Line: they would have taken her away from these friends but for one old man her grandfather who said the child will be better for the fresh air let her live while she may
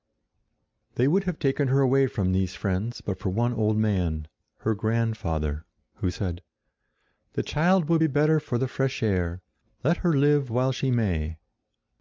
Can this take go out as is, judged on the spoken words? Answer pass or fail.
pass